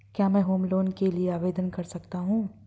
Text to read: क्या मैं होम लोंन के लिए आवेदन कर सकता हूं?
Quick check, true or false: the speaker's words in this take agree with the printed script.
true